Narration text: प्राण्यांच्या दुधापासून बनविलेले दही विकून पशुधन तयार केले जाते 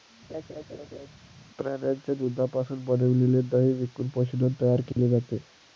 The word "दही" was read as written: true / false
true